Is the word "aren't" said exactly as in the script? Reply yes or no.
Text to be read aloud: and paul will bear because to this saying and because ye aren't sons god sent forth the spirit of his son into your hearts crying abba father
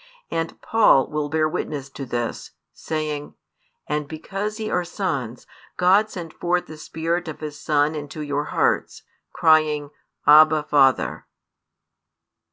no